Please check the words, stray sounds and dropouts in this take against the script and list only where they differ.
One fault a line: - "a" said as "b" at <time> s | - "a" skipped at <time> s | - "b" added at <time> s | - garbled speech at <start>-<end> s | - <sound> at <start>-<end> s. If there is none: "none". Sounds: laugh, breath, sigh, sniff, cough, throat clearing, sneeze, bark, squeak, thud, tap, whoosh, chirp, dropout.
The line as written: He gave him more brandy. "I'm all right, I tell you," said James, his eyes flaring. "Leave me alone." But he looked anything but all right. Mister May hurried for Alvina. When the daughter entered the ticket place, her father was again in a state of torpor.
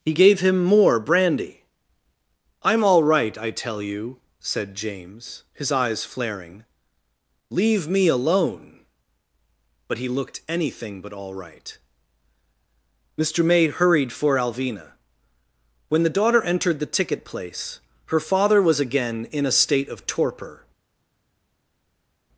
none